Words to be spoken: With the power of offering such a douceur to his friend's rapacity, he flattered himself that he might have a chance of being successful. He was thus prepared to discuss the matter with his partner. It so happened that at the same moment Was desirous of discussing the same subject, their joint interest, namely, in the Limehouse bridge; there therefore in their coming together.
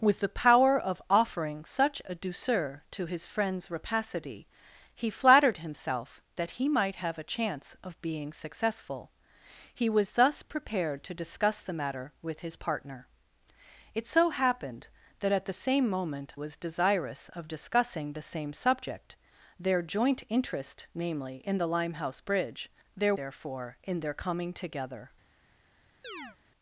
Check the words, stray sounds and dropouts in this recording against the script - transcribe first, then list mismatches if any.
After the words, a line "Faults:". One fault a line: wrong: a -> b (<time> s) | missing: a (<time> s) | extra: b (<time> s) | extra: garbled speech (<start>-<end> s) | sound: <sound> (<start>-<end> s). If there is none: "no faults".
With the power of offering such a douceur to his friend's rapacity, he flattered himself that he might have a chance of being successful. He was thus prepared to discuss the matter with his partner. It so happened that at the same moment Was desirous of discussing the same subject, their joint interest, namely, in the Limehouse bridge; there therefore in their coming together.
Faults:
sound: chirp (26.0-26.4 s)